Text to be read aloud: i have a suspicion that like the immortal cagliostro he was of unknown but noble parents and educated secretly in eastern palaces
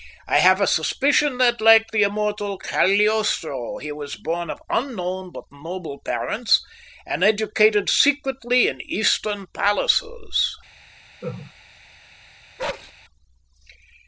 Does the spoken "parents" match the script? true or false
true